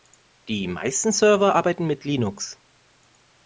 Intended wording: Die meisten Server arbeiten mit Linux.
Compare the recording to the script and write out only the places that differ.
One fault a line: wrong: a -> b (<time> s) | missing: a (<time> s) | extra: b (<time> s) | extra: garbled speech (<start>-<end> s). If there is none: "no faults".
no faults